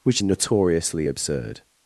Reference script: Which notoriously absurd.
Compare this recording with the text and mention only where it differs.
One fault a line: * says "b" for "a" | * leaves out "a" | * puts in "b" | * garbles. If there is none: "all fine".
all fine